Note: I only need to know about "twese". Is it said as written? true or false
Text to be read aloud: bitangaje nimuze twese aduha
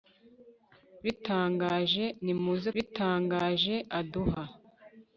false